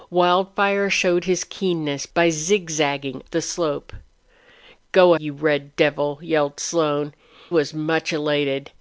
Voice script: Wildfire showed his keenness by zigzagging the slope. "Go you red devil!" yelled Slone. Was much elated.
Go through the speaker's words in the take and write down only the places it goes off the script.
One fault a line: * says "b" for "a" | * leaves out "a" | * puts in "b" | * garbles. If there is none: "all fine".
all fine